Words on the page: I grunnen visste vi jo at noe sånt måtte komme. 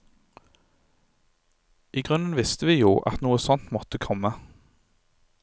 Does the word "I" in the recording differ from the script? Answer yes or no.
no